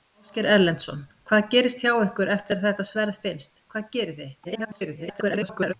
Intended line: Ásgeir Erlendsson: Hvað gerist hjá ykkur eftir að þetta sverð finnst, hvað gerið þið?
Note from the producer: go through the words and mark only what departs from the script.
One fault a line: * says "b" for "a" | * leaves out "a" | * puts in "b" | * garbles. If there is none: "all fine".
* garbles